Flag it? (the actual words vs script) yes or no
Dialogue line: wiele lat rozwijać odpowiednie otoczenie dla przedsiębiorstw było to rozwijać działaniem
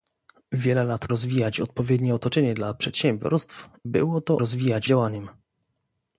no